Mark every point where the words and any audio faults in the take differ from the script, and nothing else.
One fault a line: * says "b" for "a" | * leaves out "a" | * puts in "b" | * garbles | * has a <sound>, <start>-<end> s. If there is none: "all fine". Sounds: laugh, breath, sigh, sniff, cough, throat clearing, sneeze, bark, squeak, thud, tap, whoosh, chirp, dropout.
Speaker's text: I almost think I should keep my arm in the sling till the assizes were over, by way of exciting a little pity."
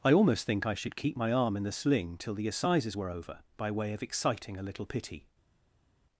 all fine